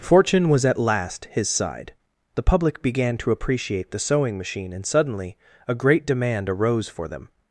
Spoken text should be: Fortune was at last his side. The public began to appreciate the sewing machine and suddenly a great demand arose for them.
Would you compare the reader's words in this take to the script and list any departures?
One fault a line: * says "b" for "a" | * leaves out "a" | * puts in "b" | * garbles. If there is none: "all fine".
all fine